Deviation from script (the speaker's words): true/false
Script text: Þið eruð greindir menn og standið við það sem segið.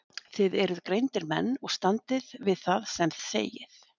false